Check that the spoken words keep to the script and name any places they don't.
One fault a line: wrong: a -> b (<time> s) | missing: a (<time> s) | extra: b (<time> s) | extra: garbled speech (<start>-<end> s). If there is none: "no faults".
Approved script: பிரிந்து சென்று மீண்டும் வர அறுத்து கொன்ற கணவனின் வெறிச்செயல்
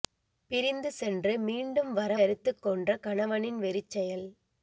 no faults